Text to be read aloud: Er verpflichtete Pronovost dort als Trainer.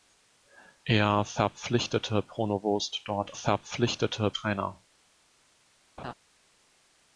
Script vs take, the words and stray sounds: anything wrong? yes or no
yes